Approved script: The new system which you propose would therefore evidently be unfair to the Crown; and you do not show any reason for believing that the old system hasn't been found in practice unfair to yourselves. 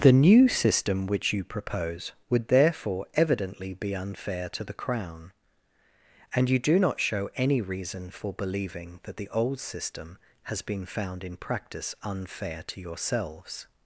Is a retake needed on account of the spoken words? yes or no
yes